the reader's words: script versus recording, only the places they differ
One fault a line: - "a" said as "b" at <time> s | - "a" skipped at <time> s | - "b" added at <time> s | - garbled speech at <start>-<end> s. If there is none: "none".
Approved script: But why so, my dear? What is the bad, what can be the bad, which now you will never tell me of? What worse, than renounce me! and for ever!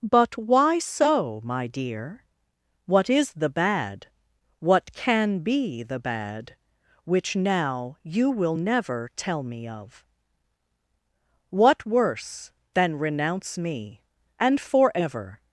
none